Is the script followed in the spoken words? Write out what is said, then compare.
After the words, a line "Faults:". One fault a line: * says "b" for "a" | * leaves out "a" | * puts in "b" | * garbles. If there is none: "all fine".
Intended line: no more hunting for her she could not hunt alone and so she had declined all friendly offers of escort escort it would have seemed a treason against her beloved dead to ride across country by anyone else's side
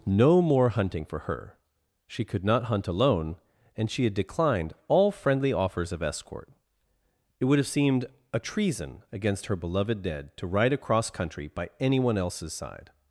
no more hunting for her she could not hunt alone and she had declined all friendly offers of escort it would have seemed a treason against her beloved dead to ride across country by anyone else's side
Faults:
* leaves out "so"
* leaves out "escort"